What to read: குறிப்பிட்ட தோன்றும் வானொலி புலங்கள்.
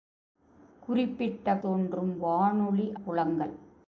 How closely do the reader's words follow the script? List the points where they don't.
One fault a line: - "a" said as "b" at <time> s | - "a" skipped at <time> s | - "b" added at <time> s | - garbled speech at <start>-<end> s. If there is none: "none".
none